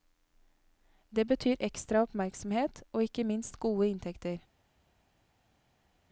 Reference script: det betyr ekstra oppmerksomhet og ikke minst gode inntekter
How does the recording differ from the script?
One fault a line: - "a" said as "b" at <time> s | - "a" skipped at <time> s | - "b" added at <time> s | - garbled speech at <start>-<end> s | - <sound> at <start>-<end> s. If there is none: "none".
none